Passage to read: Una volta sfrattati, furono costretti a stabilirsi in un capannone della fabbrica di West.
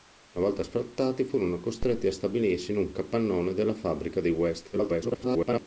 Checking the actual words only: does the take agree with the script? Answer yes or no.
no